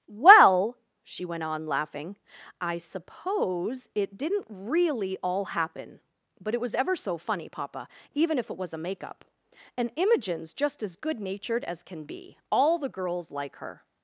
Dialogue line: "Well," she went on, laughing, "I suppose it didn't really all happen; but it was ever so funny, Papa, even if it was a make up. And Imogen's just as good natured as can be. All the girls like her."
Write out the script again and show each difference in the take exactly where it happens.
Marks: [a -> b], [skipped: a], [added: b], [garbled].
"Well," she went on, laughing, "I suppose it didn't really all happen; but it was ever so funny, Papa, even if it was a make up. And Imogen's just as good natured as can be. All the girls like her."